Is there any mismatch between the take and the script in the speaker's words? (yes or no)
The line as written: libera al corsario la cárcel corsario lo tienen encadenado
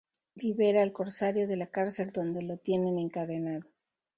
yes